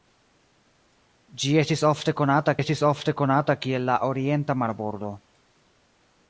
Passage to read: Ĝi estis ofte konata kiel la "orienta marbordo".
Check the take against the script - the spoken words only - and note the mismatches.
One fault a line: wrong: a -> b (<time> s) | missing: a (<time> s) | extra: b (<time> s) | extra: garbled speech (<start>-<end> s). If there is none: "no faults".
extra: estis ofte konata (2.6 s)